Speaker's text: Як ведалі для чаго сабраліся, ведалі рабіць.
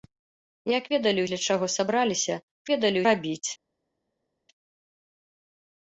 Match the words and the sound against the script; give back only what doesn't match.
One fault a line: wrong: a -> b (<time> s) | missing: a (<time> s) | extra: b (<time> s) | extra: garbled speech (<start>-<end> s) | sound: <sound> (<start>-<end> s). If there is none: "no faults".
no faults